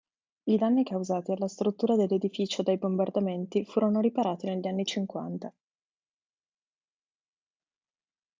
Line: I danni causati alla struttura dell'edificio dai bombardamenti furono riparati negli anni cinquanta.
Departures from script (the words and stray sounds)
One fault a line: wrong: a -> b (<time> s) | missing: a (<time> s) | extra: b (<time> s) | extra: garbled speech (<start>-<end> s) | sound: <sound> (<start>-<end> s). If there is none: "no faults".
no faults